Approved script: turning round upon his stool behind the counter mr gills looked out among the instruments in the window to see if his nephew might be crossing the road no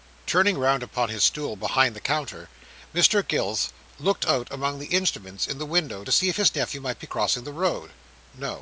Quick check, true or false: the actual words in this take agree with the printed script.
true